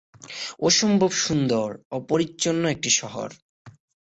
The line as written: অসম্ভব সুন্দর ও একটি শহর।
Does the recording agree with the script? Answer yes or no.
no